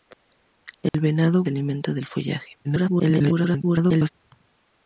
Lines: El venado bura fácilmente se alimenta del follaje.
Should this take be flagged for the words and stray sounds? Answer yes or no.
yes